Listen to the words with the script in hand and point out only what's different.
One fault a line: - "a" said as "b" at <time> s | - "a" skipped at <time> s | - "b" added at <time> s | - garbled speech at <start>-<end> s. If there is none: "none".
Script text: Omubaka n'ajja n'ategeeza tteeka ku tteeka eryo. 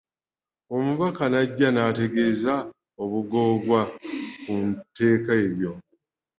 - "tteeka" said as "obugoogwa" at 3.0 s